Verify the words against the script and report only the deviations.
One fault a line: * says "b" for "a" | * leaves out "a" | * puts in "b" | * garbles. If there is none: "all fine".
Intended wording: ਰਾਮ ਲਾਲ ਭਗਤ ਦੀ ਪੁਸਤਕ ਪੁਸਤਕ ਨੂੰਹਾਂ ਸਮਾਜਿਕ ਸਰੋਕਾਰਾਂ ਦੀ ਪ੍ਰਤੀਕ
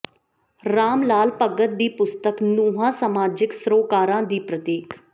* leaves out "ਪੁਸਤਕ"